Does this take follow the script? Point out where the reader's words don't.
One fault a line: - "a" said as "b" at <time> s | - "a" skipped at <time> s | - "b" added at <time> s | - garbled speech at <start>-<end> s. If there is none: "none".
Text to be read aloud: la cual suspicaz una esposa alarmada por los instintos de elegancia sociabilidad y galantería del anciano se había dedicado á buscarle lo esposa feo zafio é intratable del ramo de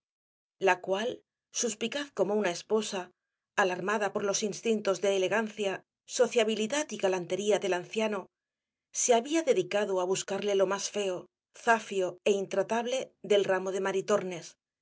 - "como" added at 2.2 s
- "esposa" said as "más" at 10.7 s